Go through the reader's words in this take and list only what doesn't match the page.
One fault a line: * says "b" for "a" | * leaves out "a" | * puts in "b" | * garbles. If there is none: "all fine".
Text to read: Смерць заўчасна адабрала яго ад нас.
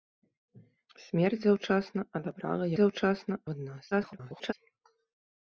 * says "заўчасна" for "яго"
* garbles